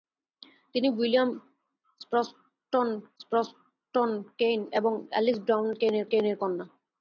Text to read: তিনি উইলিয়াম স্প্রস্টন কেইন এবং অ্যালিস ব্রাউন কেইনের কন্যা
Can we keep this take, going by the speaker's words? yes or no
no